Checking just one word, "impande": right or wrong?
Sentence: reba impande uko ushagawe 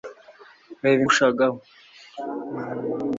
wrong